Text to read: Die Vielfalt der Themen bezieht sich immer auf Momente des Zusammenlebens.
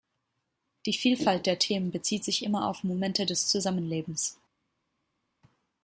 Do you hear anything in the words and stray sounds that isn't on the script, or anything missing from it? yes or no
no